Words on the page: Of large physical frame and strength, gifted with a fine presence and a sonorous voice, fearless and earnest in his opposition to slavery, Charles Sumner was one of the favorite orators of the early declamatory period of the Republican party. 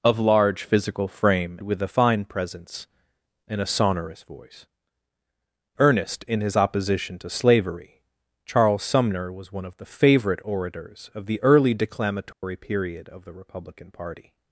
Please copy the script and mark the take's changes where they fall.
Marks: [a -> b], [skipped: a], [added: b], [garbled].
Of large physical frame [skipped: and strength, gifted] with a fine presence and a sonorous voice, [skipped: fearless and] earnest in his opposition to slavery, Charles Sumner was one of the favorite orators of the early declamatory period of the Republican party.